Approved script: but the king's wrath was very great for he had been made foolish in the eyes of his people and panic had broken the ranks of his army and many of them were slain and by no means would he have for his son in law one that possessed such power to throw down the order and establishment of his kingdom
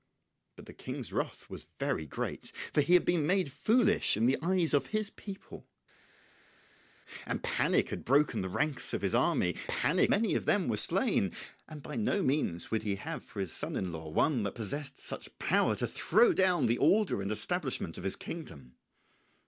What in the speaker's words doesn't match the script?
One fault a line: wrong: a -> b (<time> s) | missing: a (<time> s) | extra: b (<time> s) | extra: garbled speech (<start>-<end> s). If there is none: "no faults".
wrong: and -> panic (9.7 s)